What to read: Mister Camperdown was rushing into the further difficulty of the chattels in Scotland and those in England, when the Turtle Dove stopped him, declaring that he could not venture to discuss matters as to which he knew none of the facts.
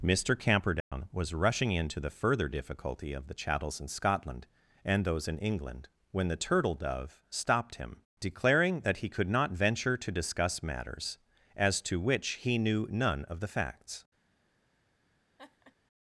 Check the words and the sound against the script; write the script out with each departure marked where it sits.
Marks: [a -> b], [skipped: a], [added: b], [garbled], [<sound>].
Mister Camperdown [dropout] was rushing into the further difficulty of the chattels in Scotland and those in England, when the Turtle Dove stopped him, declaring that he could not venture to discuss matters as to which he knew none of the facts. [laugh]